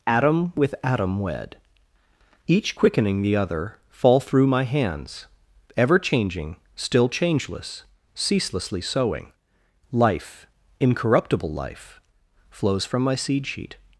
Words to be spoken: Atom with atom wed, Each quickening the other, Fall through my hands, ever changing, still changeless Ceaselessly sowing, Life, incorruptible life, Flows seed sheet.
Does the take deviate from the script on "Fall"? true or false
false